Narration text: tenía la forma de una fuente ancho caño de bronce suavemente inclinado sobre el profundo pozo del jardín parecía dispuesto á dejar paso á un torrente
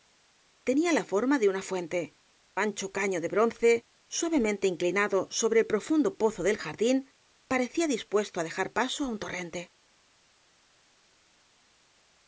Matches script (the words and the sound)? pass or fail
pass